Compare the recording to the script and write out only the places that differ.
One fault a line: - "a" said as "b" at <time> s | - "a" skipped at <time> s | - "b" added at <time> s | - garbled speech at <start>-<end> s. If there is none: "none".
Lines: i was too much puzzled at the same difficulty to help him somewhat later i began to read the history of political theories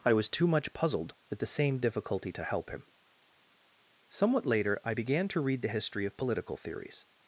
none